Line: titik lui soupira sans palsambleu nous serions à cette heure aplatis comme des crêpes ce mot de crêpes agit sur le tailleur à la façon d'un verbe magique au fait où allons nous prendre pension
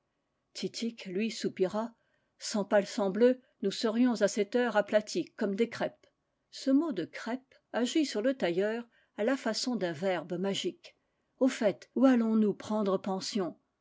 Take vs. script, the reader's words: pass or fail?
pass